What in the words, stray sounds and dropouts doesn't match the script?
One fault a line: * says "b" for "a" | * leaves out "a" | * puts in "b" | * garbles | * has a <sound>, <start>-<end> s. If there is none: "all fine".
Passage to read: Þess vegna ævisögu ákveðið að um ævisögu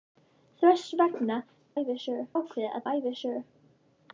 all fine